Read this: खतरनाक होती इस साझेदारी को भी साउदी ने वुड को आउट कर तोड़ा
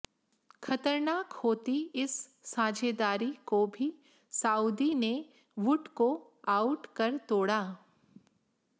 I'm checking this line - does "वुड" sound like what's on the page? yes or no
yes